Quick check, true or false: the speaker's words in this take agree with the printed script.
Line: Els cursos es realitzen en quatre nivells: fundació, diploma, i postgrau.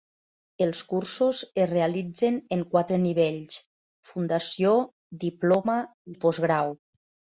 true